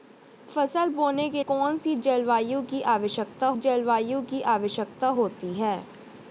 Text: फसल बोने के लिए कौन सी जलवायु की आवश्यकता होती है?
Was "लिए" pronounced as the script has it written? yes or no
no